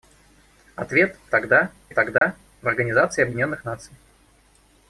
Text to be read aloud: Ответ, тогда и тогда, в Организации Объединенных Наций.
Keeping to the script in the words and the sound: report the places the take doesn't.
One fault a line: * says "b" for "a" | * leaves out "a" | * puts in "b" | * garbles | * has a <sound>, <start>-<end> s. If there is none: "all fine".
* has a dropout, 2.2-2.2 s